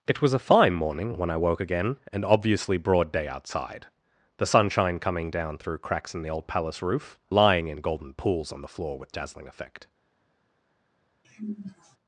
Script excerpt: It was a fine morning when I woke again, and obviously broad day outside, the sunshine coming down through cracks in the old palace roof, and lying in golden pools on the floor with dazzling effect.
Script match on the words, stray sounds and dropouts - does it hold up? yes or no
no